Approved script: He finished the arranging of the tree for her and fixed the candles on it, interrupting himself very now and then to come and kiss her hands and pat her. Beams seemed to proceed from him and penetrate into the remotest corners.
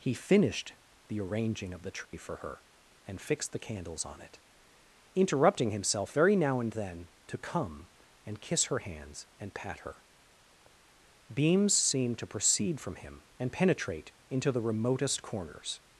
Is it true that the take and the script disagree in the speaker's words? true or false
false